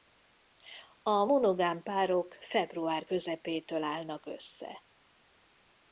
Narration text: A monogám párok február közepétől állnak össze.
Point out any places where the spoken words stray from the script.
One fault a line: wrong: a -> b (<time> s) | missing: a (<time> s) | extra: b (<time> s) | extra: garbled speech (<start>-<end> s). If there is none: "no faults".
no faults